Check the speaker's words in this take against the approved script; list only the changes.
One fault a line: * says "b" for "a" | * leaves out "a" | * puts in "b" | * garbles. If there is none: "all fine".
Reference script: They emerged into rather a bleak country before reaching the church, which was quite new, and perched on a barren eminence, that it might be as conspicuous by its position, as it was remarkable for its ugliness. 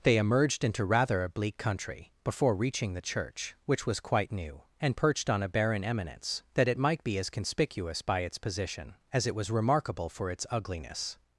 all fine